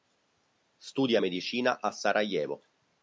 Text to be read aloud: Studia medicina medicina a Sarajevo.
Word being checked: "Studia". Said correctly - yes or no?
yes